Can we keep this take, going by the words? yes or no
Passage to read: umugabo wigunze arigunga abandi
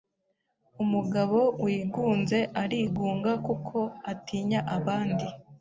no